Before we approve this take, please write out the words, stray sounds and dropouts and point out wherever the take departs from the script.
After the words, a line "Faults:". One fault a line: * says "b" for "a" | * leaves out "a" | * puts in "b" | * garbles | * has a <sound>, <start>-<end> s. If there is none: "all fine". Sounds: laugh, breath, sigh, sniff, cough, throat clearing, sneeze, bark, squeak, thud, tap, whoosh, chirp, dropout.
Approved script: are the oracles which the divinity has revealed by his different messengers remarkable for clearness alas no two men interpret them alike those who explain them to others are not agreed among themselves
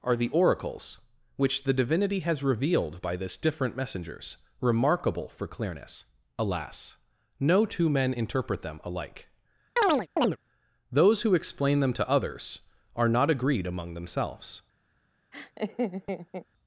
are the oracles which the divinity has revealed by this different messengers remarkable for clearness alas no two men interpret them alike those who explain them to others are not agreed among themselves
Faults:
* says "this" for "his"
* has a chirp, 9.8-10.4 s
* has a laugh, 15.3-16.5 s